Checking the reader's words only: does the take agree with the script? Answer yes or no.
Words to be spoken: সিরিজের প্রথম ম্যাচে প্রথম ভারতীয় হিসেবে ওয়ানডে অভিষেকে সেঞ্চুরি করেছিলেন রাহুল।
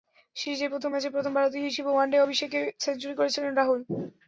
yes